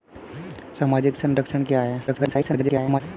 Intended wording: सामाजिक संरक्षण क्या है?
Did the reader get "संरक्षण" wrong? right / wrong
right